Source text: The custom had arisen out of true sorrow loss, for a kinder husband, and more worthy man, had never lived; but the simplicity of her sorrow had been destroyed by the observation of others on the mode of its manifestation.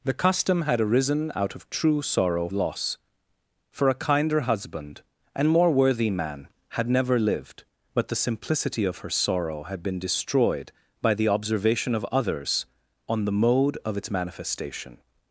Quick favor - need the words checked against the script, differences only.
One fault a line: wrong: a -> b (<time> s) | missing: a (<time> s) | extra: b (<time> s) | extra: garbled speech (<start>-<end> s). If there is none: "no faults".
no faults